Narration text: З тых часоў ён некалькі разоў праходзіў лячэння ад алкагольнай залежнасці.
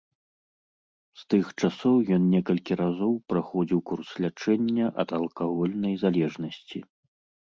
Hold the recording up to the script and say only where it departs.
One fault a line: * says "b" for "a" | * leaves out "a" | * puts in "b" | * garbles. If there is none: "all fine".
* puts in "курс"